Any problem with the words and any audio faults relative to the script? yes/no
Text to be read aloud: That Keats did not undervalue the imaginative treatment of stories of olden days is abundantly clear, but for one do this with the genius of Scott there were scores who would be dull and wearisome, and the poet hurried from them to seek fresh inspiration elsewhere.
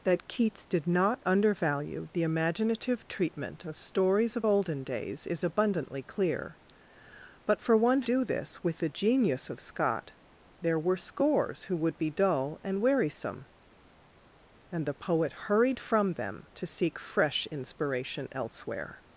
no